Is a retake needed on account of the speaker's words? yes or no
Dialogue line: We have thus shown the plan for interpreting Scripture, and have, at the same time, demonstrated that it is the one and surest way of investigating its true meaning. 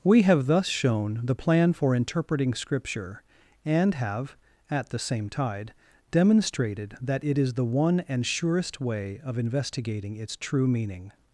yes